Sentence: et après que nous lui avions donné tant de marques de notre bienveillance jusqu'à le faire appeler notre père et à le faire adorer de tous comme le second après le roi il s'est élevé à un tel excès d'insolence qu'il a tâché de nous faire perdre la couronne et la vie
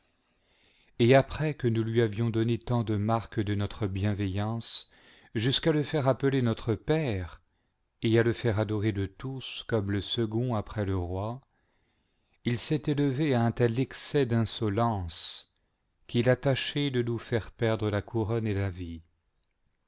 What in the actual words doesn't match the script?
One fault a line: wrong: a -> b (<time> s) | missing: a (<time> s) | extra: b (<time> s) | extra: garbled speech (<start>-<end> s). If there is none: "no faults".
no faults